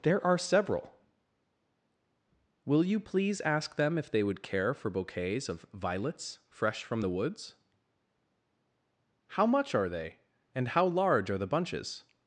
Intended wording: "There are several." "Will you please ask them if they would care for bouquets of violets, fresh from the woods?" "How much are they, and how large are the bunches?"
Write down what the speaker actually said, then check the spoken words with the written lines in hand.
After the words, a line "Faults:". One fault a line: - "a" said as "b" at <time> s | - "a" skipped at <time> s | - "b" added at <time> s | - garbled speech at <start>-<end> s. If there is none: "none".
"There are several." "Will you please ask them if they would care for bouquets of violets, fresh from the woods?" "How much are they, and how large are the bunches?"
Faults:
none